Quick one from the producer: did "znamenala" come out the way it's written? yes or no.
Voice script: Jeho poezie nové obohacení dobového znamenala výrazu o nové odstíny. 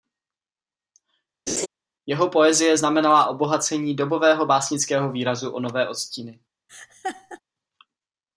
no